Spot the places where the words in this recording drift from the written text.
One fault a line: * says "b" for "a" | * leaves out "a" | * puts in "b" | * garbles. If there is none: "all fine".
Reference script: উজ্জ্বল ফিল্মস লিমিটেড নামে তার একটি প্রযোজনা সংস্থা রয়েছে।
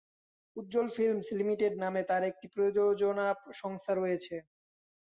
all fine